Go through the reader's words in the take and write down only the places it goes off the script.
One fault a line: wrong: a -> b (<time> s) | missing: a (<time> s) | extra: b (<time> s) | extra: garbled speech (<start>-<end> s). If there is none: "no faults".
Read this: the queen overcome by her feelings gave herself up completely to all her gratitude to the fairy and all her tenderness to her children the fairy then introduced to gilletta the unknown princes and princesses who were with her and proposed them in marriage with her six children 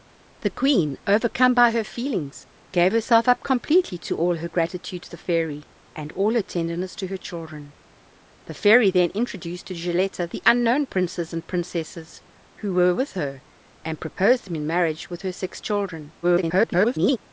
extra: garbled speech (16.2-17.2 s)